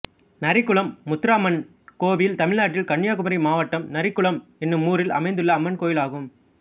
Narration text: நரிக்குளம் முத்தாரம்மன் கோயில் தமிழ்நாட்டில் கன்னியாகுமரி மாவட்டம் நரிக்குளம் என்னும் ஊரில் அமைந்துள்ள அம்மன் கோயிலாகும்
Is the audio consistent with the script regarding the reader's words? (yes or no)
yes